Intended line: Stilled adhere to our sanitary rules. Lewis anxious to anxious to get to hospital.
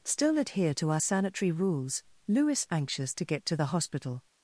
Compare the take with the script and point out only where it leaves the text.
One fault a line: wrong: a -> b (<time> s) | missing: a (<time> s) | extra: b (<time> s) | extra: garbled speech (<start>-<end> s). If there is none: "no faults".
wrong: Stilled -> Still (0.0 s)
wrong: anxious -> get (3.2 s)
wrong: get to -> the (3.5 s)